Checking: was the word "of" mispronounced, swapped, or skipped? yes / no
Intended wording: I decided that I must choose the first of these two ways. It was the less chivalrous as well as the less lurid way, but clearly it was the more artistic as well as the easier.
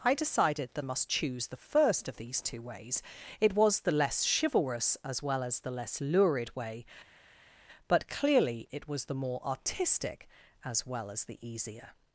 no